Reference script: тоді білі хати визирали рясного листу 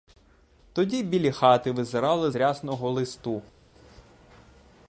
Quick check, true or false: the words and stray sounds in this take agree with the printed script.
true